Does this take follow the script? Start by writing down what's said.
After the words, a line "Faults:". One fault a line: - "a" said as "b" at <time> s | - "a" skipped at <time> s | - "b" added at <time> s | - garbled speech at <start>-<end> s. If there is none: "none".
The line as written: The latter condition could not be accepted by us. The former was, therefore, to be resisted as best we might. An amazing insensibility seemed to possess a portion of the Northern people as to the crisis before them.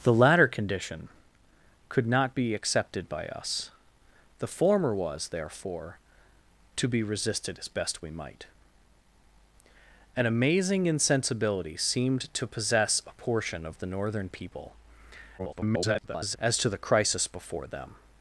The latter condition could not be accepted by us. The former was, therefore, to be resisted as best we might. An amazing insensibility seemed to possess a portion of the Northern people [garbled] as to the crisis before them.
Faults:
- garbled speech at 15.4-16.4 s